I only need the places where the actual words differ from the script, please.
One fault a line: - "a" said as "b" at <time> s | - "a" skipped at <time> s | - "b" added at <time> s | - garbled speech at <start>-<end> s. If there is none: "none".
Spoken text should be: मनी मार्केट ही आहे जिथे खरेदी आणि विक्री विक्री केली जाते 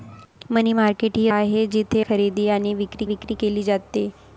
none